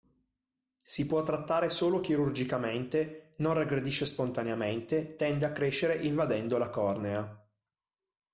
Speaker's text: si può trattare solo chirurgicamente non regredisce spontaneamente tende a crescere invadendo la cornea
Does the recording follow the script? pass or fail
pass